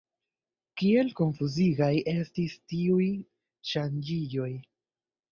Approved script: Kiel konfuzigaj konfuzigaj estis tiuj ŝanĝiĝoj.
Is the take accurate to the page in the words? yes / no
no